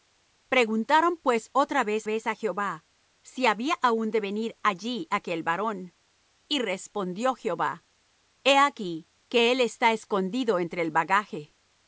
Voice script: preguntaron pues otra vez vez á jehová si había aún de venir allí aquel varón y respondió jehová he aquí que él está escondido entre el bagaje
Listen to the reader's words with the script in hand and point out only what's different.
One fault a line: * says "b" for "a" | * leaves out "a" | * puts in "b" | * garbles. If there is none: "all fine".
all fine